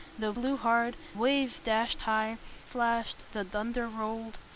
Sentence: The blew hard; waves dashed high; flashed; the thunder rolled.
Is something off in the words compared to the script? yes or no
no